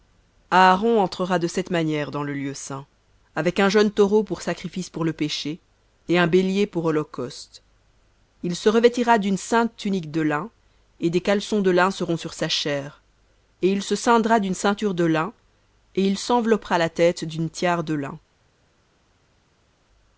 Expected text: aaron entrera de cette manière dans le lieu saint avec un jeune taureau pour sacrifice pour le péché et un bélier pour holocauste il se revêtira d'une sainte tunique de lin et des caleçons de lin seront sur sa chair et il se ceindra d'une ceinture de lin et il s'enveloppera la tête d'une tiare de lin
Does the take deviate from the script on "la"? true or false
false